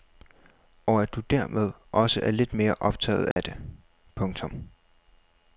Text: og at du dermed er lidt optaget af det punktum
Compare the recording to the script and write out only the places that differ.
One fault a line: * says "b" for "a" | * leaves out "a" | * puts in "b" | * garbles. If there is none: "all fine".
* puts in "også"
* puts in "mere"